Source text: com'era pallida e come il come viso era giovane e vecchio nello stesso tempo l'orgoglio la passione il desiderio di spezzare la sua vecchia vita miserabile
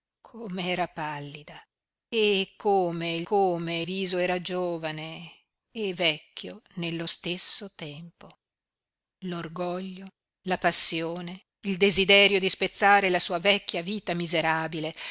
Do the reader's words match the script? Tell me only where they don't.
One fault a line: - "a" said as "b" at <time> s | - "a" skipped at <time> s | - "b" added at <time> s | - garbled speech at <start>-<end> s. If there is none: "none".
none